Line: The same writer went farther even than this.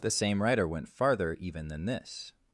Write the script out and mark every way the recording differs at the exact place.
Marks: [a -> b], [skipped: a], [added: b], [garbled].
The same writer went farther even than this.